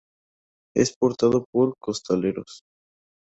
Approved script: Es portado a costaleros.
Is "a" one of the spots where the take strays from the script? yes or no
yes